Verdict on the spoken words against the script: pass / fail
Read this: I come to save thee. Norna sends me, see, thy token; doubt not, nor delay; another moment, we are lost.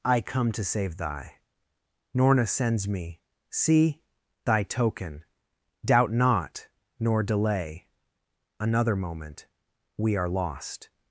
fail